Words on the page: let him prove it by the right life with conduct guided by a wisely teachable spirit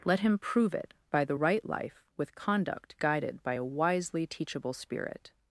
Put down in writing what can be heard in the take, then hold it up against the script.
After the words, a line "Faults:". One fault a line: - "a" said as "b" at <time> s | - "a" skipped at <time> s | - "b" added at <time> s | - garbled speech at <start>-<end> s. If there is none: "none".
let him prove it by the right life with conduct guided by a wisely teachable spirit
Faults:
none